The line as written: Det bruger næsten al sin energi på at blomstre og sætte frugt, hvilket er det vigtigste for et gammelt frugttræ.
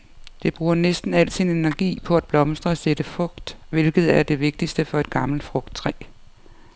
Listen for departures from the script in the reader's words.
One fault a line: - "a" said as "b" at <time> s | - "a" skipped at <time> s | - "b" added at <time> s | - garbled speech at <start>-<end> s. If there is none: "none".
none